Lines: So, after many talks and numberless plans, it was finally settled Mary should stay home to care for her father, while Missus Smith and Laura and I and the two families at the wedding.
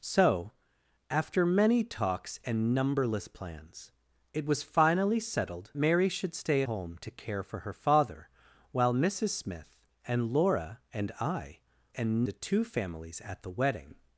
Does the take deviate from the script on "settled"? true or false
false